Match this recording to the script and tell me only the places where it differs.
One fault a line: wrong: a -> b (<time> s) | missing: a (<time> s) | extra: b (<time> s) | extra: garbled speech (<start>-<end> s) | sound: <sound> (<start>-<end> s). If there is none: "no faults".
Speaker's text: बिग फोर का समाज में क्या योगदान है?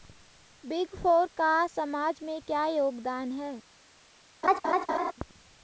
sound: laugh (4.4-5.1 s)